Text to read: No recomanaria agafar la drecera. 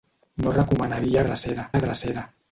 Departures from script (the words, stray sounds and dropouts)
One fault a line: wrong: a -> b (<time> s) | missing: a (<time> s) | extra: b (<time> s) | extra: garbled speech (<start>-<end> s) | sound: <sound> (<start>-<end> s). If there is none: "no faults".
wrong: agafar -> drecera (1.3 s)